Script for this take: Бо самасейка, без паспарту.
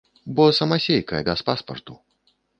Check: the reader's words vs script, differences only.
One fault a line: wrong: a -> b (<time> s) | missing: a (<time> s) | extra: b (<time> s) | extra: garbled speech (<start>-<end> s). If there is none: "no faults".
no faults